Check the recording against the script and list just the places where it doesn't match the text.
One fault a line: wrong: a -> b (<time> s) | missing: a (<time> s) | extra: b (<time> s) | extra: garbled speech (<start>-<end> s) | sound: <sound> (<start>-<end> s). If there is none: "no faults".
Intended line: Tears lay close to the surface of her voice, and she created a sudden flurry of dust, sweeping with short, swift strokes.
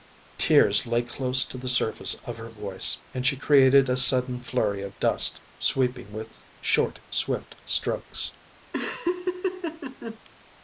sound: laugh (8.7-10.2 s)